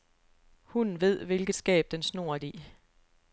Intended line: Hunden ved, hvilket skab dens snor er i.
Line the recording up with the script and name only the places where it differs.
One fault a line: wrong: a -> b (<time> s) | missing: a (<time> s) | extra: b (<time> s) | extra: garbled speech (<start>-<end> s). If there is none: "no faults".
no faults